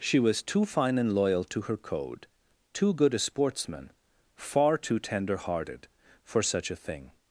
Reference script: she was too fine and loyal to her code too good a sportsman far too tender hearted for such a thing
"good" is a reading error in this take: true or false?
false